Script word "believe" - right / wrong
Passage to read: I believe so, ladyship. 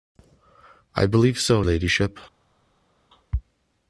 right